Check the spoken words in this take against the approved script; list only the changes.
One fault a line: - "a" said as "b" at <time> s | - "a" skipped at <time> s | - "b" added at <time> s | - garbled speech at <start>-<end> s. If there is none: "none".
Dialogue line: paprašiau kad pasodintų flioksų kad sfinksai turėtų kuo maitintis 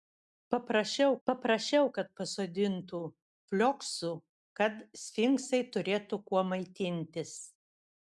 - "paprašiau" added at 1.3 s